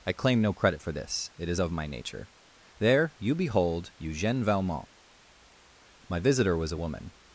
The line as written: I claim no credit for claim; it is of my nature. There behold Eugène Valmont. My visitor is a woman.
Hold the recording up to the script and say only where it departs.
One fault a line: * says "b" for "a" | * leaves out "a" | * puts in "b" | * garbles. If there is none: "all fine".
* says "this" for "claim"
* puts in "you"
* says "was" for "is"